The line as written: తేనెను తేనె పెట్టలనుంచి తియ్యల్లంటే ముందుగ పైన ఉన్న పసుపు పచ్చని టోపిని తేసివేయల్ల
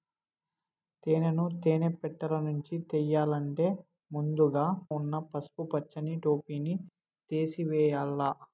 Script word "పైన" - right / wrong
wrong